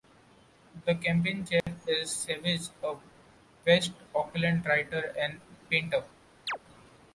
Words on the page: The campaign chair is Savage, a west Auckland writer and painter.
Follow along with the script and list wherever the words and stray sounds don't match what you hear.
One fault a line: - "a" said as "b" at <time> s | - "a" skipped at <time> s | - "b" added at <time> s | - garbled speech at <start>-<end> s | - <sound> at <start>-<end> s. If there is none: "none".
- dropout at 1.6-1.7 s
- chirp at 6.5-6.6 s